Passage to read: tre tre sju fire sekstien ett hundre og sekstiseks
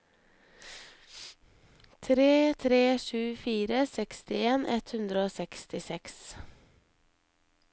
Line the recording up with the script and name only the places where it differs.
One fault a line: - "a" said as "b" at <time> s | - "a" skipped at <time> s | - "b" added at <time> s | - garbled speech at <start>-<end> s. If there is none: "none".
none